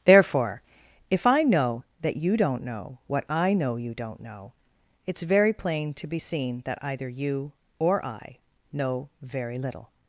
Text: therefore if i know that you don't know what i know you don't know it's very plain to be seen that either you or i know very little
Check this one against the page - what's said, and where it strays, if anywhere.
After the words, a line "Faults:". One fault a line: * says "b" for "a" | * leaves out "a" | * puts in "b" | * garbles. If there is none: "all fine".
therefore if i know that you don't know what i know you don't know it's very plain to be seen that either you or i know very little
Faults:
all fine